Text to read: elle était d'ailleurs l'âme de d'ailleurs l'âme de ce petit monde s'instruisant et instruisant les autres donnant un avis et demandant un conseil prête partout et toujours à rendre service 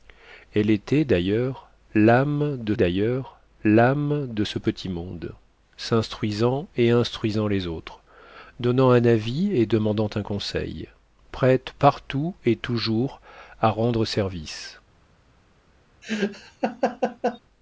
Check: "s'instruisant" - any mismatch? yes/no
no